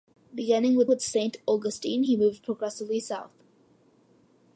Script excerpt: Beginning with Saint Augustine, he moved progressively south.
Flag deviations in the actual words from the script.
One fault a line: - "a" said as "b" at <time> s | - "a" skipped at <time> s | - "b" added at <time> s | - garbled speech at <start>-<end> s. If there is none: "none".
- "with" added at 0.9 s